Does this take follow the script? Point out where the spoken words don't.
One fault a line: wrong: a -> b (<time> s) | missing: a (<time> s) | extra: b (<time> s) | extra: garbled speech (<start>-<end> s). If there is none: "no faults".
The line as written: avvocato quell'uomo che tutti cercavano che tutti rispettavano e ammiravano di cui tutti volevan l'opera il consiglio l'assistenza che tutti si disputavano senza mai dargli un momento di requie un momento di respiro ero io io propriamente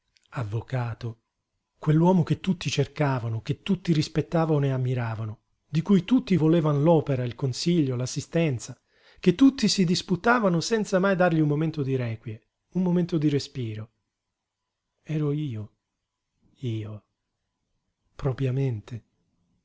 no faults